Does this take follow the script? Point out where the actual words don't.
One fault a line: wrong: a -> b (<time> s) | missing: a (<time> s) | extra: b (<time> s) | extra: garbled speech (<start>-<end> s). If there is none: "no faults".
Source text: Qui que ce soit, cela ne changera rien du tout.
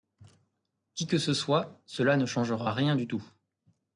no faults